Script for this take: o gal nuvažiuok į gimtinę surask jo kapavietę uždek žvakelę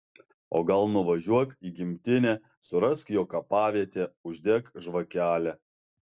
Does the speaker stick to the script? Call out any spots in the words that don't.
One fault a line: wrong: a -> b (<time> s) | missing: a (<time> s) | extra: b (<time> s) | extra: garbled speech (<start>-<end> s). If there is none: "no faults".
no faults